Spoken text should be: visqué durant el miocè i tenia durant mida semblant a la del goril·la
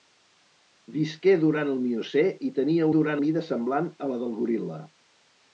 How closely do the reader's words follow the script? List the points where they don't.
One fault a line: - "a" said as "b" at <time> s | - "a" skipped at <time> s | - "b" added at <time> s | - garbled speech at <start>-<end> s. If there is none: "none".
none